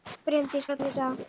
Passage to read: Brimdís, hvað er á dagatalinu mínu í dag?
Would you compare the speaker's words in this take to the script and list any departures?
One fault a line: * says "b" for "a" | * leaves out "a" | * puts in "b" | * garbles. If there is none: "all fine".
* leaves out "hvað"
* leaves out "dagatalinu"